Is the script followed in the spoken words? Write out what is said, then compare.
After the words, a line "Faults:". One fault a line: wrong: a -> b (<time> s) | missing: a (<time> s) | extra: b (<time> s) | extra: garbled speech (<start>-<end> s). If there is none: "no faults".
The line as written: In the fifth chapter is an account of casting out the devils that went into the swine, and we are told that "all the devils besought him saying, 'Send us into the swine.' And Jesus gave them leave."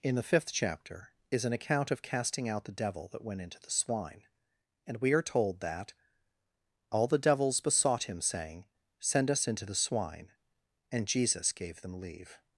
In the fifth chapter is an account of casting out the devil that went into the swine, and we are told that "all the devils besought him saying, 'Send us into the swine.' And Jesus gave them leave."
Faults:
wrong: devils -> devil (2.7 s)